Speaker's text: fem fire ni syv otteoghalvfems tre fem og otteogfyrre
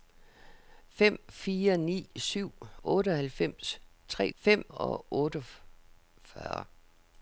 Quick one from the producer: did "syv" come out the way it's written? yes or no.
yes